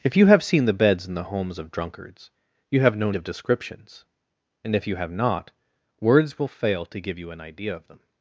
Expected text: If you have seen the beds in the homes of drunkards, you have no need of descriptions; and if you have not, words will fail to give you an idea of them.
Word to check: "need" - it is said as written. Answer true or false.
false